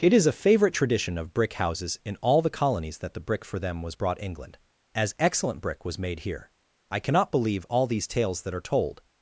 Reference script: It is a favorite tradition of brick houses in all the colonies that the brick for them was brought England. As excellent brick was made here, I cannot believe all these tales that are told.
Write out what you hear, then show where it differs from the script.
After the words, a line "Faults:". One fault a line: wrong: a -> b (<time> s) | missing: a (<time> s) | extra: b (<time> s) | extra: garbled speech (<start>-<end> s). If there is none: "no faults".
It is a favorite tradition of brick houses in all the colonies that the brick for them was brought England. As excellent brick was made here, I cannot believe all these tales that are told.
Faults:
no faults